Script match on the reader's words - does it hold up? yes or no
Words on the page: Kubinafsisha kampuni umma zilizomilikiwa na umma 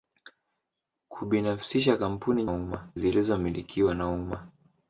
yes